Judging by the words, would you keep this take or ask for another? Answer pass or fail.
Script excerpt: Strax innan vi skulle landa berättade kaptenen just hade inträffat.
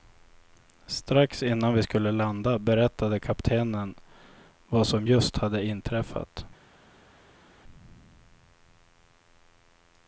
fail